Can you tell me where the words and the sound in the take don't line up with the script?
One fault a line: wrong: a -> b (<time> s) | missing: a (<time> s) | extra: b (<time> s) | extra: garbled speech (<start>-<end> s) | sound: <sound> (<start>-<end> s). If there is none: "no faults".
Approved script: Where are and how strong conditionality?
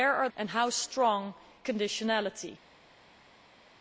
no faults